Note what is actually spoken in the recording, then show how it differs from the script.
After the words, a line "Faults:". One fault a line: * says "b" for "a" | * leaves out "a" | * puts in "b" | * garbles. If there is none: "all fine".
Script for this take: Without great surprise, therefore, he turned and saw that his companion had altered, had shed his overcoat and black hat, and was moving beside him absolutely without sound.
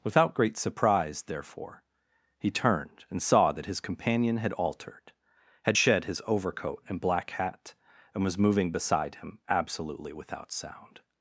Without great surprise, therefore, he turned and saw that his companion had altered, had shed his overcoat and black hat, and was moving beside him absolutely without sound.
Faults:
all fine